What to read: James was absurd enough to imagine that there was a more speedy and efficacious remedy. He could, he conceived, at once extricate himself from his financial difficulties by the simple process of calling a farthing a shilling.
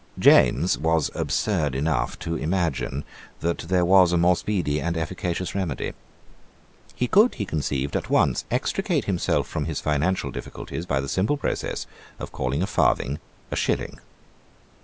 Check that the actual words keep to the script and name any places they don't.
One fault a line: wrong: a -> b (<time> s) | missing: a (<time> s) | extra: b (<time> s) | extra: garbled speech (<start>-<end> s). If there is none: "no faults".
no faults